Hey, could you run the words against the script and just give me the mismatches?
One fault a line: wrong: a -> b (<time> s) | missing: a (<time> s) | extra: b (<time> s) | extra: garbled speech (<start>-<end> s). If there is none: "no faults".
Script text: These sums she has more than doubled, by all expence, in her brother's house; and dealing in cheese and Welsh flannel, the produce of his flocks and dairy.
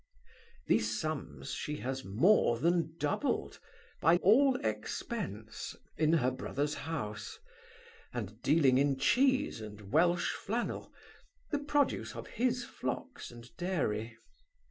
no faults